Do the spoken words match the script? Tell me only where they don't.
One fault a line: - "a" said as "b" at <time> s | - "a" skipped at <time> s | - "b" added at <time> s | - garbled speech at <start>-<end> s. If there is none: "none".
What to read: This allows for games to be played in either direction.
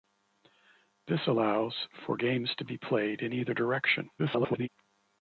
- garbled speech at 4.2-4.7 s